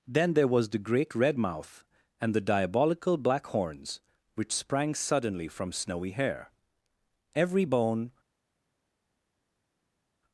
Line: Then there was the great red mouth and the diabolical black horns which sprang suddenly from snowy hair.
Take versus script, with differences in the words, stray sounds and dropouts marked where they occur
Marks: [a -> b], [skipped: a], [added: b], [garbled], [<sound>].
Then there was the great red mouth and the diabolical black horns which sprang suddenly from snowy hair. [added: Every bone]